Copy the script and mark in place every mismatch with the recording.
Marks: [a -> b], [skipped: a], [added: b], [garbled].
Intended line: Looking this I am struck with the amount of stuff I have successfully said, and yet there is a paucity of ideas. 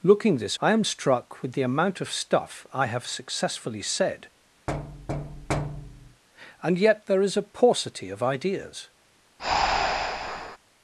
Looking this I am struck with the amount of stuff I have successfully said, and yet there is a paucity of ideas.